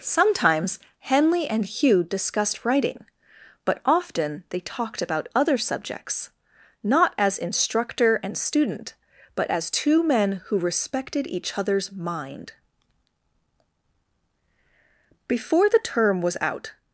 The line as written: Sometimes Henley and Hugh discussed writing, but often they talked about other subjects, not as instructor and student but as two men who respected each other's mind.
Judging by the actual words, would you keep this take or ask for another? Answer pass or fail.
fail